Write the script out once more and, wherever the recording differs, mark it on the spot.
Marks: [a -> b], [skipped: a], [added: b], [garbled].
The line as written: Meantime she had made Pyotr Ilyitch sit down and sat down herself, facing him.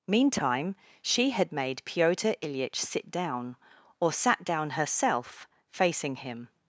Meantime she had made Pyotr Ilyitch sit down [and -> or] sat down herself, facing him.